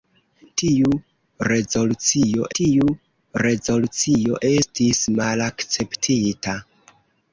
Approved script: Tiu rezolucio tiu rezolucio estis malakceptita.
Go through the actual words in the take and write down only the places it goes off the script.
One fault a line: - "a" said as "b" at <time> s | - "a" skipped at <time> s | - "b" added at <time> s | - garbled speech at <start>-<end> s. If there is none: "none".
none